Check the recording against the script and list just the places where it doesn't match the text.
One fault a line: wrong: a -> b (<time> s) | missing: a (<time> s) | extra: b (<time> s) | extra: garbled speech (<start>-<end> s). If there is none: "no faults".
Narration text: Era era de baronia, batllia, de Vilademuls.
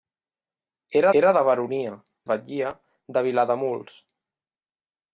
no faults